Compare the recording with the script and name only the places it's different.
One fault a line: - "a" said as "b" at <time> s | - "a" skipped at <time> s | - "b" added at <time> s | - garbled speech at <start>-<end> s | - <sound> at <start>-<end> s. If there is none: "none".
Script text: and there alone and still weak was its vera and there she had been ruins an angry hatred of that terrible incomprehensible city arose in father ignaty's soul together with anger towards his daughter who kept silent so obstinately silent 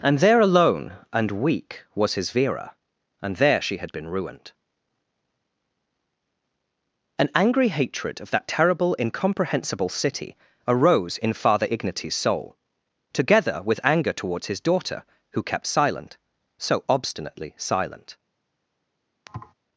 - "still" skipped at 1.3 s
- "its" said as "his" at 2.1 s
- "ruins" said as "ruined" at 4.1 s
- thud at 19.3-19.5 s